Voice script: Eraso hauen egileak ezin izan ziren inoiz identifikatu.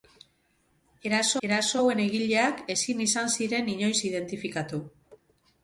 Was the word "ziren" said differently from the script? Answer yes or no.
no